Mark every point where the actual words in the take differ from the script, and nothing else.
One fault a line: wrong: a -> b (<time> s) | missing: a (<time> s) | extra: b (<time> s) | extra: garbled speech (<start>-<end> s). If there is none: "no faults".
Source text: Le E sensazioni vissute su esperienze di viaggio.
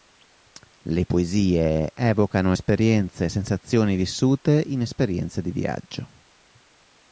extra: Poesie evocano esperienze (1.0 s)
wrong: su -> in (4.7 s)